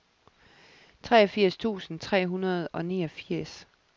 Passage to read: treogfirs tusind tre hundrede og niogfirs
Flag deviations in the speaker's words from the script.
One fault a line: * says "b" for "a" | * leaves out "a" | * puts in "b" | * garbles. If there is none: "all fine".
all fine